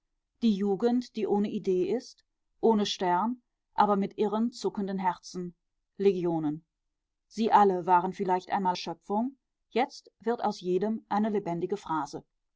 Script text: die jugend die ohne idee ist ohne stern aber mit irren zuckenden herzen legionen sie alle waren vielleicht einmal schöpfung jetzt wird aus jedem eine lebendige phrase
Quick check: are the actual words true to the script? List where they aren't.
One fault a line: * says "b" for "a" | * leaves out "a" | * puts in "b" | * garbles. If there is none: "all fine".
all fine